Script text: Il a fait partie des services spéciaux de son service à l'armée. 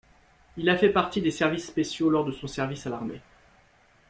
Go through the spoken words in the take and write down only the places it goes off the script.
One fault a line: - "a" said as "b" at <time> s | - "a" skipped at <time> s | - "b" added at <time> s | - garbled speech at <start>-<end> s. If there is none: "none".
- "lors" added at 2.1 s